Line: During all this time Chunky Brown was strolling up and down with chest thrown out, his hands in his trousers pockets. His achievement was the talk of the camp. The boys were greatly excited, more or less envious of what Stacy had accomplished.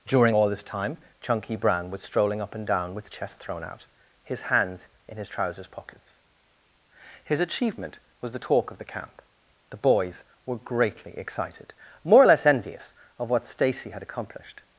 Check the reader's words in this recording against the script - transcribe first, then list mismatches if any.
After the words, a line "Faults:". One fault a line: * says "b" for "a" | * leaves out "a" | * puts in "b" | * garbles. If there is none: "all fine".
During all this time Chunky Brown was strolling up and down with chest thrown out, his hands in his trousers pockets. His achievement was the talk of the camp. The boys were greatly excited, more or less envious of what Stacy had accomplished.
Faults:
all fine